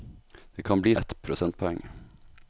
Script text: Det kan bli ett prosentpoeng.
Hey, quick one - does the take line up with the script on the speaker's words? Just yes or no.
yes